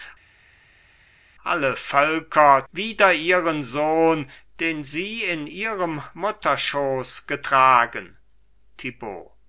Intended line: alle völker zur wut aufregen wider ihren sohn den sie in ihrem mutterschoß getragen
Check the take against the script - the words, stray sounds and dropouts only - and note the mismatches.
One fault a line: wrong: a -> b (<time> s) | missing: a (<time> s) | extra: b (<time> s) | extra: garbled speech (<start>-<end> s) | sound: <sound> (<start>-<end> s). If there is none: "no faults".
missing: zur wut aufregen (2.6 s)